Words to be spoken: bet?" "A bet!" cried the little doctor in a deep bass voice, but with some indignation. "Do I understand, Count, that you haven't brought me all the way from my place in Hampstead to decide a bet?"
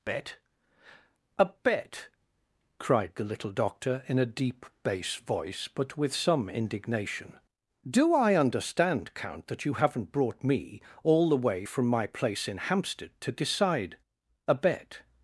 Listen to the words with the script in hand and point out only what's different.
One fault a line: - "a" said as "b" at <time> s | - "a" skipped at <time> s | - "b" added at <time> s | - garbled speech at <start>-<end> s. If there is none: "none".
none